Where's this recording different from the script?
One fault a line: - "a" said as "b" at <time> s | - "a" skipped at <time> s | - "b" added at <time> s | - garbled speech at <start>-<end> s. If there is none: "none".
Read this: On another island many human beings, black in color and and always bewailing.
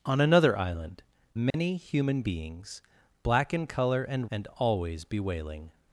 none